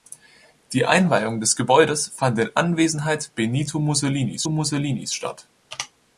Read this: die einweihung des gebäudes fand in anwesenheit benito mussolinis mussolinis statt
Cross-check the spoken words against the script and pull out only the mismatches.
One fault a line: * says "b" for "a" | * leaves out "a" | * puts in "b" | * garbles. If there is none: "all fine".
all fine